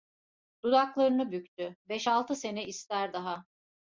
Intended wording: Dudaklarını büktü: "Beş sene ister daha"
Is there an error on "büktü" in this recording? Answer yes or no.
no